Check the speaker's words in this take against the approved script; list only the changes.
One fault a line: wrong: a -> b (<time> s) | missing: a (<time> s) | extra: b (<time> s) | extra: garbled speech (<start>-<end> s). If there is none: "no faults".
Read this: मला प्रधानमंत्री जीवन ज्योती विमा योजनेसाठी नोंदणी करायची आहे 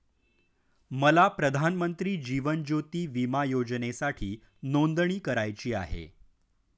no faults